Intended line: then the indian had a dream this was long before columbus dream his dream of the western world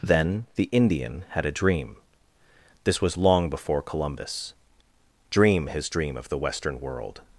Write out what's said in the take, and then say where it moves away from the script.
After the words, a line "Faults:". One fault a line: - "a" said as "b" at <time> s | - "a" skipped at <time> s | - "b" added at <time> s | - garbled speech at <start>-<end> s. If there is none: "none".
then the indian had a dream this was long before columbus dream his dream of the western world
Faults:
none